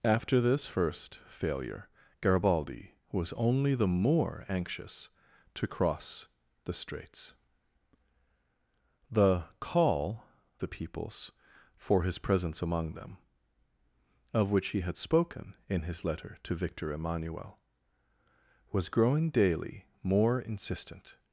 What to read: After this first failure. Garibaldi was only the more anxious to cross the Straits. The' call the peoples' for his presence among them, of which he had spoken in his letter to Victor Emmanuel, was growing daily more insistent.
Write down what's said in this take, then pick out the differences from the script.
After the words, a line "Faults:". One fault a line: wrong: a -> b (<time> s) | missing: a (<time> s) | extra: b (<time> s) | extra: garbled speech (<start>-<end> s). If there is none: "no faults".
After this first failure. Garibaldi was only the more anxious to cross the Straits. The' call the peoples' for his presence among them, of which he had spoken in his letter to Victor Emmanuel, was growing daily more insistent.
Faults:
no faults